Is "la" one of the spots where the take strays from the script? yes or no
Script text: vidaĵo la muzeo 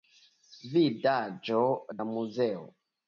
no